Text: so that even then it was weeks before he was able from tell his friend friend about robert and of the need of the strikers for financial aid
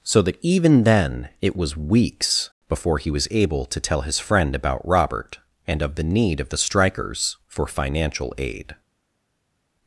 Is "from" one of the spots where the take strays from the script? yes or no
yes